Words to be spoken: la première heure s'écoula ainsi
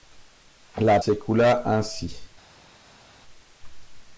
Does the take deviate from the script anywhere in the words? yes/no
yes